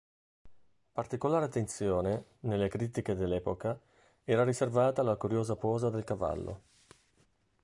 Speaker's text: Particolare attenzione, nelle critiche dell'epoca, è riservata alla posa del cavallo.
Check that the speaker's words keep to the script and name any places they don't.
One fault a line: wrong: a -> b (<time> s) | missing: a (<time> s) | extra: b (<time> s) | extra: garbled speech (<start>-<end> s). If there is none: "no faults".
wrong: è -> era (4.2 s)
extra: curiosa (5.2 s)